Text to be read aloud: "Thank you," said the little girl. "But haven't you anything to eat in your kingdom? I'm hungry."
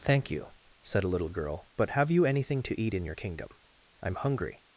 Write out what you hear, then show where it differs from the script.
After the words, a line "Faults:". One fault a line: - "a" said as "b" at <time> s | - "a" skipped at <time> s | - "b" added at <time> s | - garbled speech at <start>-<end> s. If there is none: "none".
"Thank you," said a little girl. "But have you anything to eat in your kingdom? I'm hungry."
Faults:
- "the" said as "a" at 1.0 s
- "haven't" said as "have" at 1.9 s